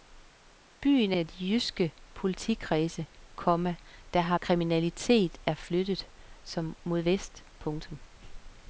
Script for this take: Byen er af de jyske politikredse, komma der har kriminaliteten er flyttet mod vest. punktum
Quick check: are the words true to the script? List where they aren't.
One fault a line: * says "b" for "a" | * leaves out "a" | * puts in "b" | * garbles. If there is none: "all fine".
all fine